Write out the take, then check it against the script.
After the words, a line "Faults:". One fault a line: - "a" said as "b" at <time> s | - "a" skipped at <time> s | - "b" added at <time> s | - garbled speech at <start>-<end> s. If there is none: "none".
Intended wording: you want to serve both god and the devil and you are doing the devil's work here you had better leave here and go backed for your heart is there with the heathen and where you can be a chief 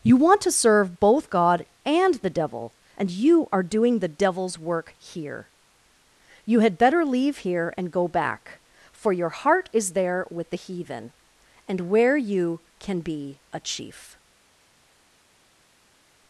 you want to serve both god and the devil and you are doing the devil's work here you had better leave here and go back for your heart is there with the heathen and where you can be a chief
Faults:
- "backed" said as "back" at 8.1 s